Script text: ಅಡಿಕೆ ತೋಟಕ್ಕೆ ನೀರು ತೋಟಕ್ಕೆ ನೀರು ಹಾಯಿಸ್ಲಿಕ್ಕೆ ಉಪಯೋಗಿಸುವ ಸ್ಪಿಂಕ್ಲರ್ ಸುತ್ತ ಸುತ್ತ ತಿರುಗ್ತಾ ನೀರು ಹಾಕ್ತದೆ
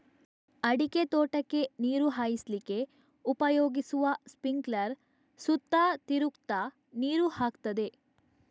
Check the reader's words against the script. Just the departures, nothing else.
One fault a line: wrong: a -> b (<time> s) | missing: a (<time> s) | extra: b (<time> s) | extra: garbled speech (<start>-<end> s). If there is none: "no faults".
missing: ತೋಟಕ್ಕೆ ನೀರು (2.1 s)
missing: ಸುತ್ತ (5.8 s)